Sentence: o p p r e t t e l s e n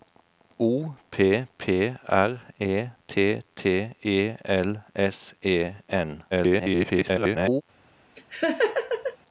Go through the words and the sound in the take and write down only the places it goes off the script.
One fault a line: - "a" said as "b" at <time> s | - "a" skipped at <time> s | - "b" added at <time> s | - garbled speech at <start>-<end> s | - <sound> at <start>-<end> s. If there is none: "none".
- garbled speech at 6.3-7.6 s
- laugh at 8.2-9.2 s